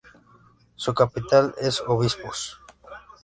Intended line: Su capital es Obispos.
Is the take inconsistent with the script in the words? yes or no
no